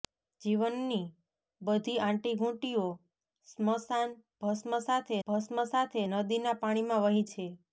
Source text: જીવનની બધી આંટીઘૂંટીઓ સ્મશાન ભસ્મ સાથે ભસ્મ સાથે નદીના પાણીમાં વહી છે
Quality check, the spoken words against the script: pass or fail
pass